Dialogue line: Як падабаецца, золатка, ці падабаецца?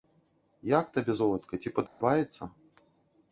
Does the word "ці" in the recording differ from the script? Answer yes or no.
no